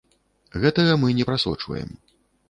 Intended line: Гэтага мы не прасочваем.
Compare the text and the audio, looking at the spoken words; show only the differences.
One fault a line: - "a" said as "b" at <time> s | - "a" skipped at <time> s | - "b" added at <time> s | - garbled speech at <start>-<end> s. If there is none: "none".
none